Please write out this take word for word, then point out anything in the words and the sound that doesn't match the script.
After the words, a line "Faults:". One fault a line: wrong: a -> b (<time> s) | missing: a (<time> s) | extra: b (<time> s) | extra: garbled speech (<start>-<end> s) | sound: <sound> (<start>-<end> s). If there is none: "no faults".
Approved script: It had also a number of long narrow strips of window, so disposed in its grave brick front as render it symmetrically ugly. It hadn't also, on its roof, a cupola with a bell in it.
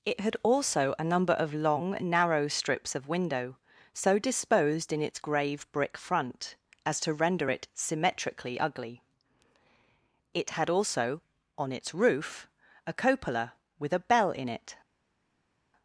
It had also a number of long narrow strips of window, so disposed in its grave brick front as to render it symmetrically ugly. It had also, on its roof, a cupola with a bell in it.
Faults:
extra: to (7.0 s)
wrong: hadn't -> had (10.5 s)